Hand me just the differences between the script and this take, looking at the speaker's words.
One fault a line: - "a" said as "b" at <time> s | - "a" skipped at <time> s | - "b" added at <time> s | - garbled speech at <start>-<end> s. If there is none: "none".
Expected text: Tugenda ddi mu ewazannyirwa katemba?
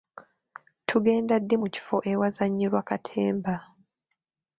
- "kifo" added at 1.7 s